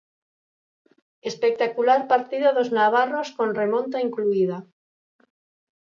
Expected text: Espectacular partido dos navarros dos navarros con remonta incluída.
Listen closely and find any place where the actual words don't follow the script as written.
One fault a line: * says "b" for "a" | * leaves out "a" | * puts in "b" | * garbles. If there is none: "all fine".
* leaves out "dos navarros"